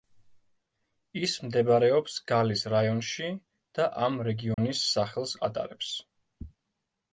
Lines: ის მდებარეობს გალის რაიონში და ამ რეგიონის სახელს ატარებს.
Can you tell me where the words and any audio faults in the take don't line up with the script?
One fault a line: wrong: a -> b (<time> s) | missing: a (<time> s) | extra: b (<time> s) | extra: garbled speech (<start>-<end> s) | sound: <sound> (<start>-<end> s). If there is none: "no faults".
sound: dropout (4.5-4.6 s)